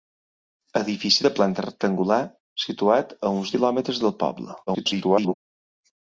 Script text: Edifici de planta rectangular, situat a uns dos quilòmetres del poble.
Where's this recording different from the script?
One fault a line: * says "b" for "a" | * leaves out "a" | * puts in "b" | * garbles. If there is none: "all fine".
* leaves out "dos"
* garbles